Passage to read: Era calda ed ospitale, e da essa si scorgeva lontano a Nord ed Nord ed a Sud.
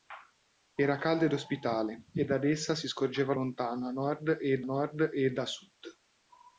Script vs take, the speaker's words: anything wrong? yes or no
no